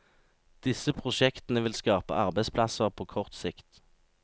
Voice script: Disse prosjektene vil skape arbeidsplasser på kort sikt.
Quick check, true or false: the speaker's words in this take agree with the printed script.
true